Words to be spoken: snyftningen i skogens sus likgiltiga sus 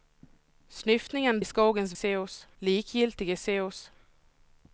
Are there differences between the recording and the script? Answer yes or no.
no